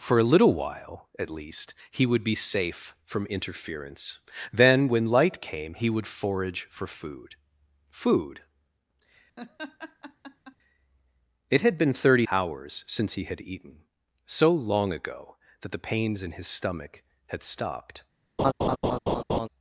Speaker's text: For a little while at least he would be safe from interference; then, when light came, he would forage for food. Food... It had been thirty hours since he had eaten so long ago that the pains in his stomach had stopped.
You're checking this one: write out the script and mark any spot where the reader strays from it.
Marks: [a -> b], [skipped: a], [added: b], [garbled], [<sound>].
For a little while at least he would be safe from interference; then, when light came, he would forage for food. Food... [laugh] It had been thirty hours since he had eaten so long ago that the pains in his stomach had stopped. [laugh]